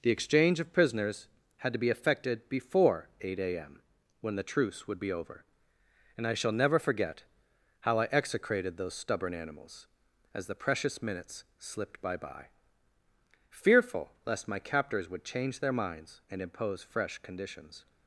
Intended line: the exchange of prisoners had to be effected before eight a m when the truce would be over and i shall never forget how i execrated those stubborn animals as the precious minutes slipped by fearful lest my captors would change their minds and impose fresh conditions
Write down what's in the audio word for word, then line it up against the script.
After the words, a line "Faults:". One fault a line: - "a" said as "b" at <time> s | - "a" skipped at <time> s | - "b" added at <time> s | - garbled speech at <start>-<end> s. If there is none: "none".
the exchange of prisoners had to be effected before eight a m when the truce would be over and i shall never forget how i execrated those stubborn animals as the precious minutes slipped by by fearful lest my captors would change their minds and impose fresh conditions
Faults:
- "by" added at 12.2 s